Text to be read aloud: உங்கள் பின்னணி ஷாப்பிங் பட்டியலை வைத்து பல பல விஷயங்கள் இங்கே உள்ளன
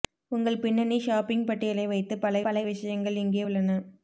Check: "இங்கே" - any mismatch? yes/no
no